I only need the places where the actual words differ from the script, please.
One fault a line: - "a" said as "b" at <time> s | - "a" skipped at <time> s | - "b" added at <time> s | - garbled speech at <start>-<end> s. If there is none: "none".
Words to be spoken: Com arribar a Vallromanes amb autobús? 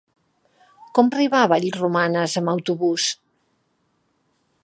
none